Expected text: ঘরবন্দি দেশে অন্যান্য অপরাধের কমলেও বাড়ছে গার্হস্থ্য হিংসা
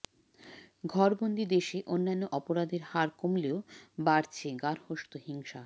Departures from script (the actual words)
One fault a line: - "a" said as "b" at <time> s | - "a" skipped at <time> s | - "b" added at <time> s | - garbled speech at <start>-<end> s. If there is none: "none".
- "হার" added at 2.8 s